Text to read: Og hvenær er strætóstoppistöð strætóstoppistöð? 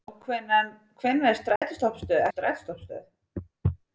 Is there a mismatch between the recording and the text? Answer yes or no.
no